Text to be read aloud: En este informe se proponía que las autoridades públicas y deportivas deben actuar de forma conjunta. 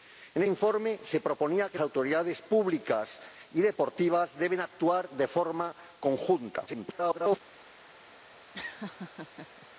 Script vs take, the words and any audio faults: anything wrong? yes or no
yes